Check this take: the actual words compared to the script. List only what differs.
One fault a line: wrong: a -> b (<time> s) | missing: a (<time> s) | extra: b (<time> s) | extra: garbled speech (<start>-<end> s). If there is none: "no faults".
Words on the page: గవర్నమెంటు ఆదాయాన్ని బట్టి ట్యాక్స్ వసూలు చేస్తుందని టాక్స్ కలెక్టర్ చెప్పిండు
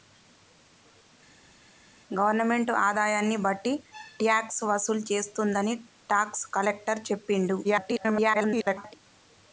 extra: garbled speech (7.6-8.9 s)